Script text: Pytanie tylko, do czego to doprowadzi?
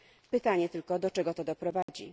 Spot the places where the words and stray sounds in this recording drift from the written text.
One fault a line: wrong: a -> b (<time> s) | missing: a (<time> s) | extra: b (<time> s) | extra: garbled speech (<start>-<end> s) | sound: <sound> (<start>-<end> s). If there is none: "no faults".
sound: dropout (1.8-1.9 s)